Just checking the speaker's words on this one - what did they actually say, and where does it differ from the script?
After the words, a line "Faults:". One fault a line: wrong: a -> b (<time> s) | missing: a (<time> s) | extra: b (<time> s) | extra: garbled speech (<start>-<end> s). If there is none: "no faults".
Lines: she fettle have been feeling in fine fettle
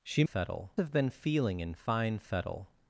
she fettle have been feeling in fine fettle
Faults:
no faults